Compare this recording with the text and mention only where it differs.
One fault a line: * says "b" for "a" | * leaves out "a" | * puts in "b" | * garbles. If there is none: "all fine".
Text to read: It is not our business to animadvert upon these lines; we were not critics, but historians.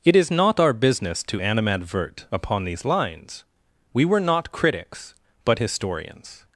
all fine